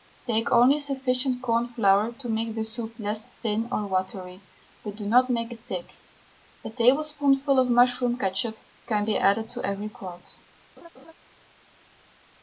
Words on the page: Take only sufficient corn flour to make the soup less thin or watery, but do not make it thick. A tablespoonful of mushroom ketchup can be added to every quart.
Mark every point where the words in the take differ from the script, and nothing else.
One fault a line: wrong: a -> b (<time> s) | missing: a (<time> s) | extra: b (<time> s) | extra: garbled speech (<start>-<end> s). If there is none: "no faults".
no faults